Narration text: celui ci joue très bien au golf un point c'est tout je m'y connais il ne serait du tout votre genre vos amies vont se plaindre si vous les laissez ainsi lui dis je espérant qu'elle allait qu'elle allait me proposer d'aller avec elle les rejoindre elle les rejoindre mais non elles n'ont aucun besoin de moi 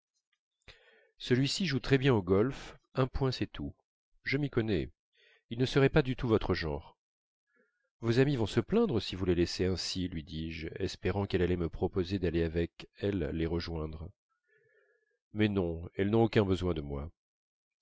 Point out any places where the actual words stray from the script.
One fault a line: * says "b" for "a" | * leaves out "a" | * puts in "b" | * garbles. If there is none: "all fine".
* puts in "pas"
* leaves out "qu'elle allait"
* leaves out "elle les rejoindre"